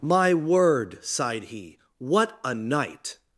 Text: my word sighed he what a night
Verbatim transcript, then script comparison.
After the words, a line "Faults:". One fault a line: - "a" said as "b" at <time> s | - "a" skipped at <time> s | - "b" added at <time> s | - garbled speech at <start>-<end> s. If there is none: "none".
my word sighed he what a night
Faults:
none